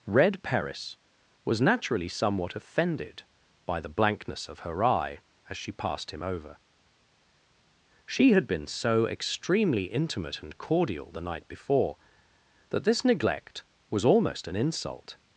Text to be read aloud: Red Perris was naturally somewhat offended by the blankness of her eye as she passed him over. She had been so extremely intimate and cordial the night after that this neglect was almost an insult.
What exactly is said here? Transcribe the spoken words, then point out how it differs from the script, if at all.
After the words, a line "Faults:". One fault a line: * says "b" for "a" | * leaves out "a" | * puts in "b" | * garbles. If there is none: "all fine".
Red Perris was naturally somewhat offended by the blankness of her eye as she passed him over. She had been so extremely intimate and cordial the night before that this neglect was almost an insult.
Faults:
* says "before" for "after"